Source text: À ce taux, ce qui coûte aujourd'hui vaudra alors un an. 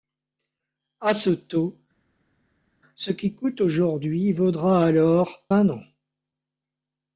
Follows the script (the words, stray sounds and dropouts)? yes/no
yes